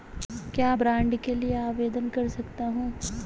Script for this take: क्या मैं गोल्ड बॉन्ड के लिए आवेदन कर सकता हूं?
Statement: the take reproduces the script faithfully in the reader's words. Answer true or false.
false